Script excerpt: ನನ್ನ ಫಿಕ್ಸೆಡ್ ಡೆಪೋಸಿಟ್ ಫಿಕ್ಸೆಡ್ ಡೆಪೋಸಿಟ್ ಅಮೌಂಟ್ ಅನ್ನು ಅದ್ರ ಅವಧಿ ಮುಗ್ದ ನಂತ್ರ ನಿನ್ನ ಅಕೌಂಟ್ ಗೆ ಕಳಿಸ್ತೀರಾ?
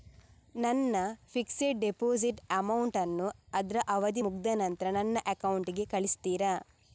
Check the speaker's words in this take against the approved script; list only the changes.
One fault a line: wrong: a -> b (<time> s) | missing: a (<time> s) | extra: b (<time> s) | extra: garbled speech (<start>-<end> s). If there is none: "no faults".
missing: ಫಿಕ್ಸೆಡ್ ಡೆಪೋಸಿಟ್ (2.4 s)
wrong: ನಿನ್ನ -> ನನ್ನ (4.9 s)